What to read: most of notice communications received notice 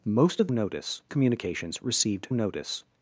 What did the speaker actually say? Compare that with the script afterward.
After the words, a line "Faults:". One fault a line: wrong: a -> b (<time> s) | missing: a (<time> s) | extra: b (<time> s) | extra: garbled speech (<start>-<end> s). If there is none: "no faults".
most of notice communications received notice
Faults:
no faults